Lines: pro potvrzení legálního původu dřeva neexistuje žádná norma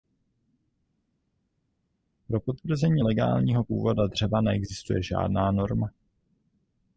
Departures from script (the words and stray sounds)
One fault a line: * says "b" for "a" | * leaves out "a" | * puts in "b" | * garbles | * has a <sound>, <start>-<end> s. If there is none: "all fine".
all fine